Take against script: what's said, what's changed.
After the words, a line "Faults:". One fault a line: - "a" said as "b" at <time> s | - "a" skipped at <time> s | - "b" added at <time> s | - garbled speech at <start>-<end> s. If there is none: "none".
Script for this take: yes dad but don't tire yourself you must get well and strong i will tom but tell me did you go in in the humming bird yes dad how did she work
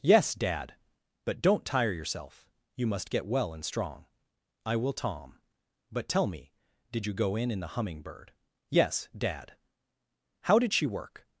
yes dad but don't tire yourself you must get well and strong i will tom but tell me did you go in in the humming bird yes dad how did she work
Faults:
none